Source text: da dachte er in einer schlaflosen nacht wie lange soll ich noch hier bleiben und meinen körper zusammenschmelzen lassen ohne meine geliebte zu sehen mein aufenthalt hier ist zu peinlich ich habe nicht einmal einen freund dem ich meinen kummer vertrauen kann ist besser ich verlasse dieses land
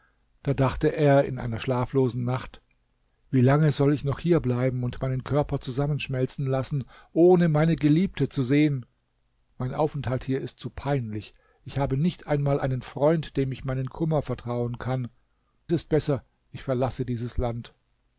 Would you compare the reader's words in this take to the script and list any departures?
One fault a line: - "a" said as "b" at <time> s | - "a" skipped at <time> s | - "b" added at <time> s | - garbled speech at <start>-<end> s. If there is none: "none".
none